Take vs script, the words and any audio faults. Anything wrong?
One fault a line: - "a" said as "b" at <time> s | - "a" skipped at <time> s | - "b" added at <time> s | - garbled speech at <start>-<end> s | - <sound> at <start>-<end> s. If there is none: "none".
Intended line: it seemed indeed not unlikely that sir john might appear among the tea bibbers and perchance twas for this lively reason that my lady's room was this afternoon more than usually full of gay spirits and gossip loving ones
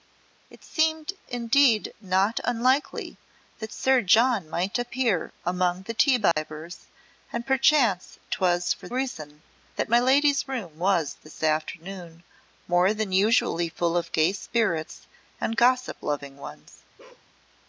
- dropout at 6.3-6.4 s
- "this lively" skipped at 8.9 s
- bark at 17.0-17.3 s